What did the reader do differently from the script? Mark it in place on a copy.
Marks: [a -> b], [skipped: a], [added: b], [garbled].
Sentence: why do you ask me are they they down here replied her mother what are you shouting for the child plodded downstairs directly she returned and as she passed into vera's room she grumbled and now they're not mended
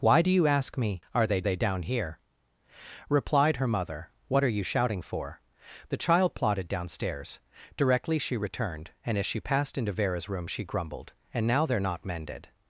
why do you ask me are they they down here replied her mother what are you shouting for the child plodded downstairs directly she returned and as she passed into vera's room she grumbled and now they're not mended